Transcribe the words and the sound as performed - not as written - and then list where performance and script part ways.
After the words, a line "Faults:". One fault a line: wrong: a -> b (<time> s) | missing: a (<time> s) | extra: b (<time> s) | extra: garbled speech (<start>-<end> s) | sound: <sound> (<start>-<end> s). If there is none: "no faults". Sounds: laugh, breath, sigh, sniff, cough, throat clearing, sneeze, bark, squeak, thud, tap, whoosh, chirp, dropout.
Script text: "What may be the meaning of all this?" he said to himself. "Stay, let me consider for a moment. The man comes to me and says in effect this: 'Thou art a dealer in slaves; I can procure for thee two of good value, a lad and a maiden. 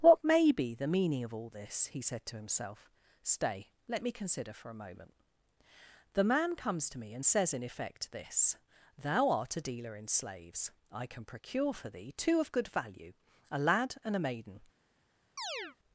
"What may be the meaning of all this?" he said to himself. "Stay, let me consider for a moment. The man comes to me and says in effect this: 'Thou art a dealer in slaves; I can procure for thee two of good value, a lad and a maiden.
Faults:
sound: chirp (15.4-15.8 s)